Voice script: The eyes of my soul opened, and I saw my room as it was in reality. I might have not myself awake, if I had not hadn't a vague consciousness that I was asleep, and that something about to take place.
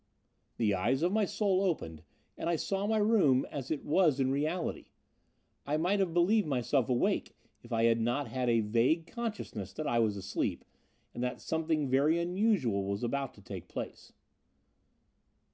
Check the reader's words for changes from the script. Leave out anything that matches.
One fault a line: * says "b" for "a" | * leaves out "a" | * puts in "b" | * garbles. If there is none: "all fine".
* says "believed" for "not"
* says "had" for "hadn't"
* puts in "very unusual was"